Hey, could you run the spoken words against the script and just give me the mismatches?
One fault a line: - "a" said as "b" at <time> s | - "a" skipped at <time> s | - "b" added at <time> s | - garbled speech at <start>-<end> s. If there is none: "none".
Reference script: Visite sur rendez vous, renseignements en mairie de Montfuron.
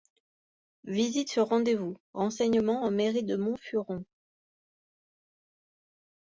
none